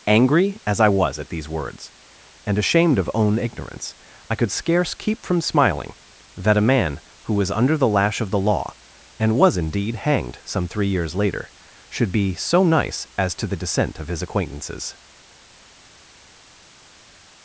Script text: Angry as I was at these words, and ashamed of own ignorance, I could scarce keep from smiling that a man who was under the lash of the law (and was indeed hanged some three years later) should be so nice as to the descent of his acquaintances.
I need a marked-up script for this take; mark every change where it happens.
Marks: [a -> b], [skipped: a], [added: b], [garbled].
Angry as I was at these words, and ashamed of own ignorance, I could scarce keep from smiling that a man who was under the lash of the law (and was indeed hanged some three years later) should be so nice as to the descent of his acquaintances.